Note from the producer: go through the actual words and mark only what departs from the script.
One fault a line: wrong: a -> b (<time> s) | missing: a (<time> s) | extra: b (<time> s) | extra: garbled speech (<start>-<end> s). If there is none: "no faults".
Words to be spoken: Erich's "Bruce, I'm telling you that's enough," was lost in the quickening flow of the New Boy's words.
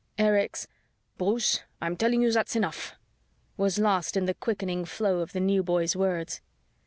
no faults